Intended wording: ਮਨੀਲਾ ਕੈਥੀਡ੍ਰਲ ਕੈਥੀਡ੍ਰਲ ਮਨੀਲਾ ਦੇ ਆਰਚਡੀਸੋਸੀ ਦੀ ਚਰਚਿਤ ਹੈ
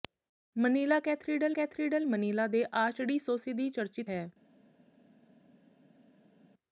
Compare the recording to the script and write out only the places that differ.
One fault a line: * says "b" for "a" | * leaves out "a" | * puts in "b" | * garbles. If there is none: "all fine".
all fine